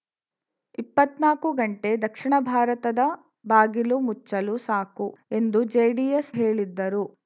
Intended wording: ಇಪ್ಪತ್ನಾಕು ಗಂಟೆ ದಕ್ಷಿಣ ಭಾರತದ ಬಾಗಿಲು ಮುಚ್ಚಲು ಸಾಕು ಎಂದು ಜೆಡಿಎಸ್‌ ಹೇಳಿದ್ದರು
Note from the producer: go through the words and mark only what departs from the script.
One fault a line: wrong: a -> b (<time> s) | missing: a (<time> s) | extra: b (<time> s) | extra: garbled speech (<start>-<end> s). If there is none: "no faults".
no faults